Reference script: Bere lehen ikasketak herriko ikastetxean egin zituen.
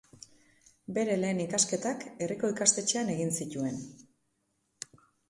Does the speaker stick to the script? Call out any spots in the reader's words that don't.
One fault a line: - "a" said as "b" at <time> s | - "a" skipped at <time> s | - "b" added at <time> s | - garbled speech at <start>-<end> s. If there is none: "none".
none